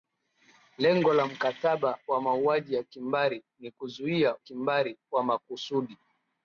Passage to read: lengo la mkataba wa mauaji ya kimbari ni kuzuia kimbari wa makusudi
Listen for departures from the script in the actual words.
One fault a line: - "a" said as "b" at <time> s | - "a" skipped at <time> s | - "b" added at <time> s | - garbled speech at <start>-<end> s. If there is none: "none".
none